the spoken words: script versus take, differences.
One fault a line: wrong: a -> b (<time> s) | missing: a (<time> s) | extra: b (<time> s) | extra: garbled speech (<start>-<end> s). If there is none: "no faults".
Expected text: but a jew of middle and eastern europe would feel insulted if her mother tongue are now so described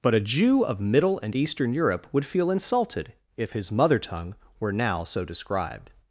wrong: her -> his (3.5 s)
wrong: are -> were (4.6 s)